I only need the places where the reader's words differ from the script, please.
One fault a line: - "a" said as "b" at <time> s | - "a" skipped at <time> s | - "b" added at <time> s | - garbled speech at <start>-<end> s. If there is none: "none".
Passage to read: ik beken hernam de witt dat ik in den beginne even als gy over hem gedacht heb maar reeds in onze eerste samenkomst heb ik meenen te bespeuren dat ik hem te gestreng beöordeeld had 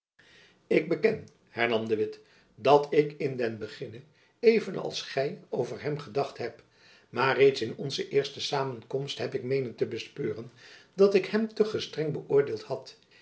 none